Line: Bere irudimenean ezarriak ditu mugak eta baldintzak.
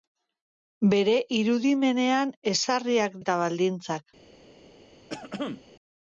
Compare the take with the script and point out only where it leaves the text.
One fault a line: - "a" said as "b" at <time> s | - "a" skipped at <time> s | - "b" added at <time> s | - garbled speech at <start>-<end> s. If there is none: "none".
- "ditu mugak" skipped at 3.2 s